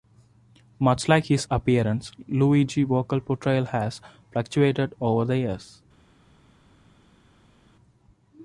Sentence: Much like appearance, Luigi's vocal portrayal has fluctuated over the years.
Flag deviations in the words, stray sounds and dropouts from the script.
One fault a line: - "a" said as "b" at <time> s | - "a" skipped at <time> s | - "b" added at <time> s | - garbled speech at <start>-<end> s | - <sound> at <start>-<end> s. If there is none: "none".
- "his" added at 1.2 s